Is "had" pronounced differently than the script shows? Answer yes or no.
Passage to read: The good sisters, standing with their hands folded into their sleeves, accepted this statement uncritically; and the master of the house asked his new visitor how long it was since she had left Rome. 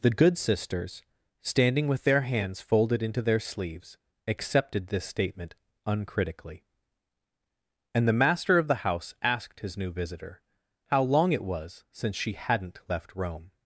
yes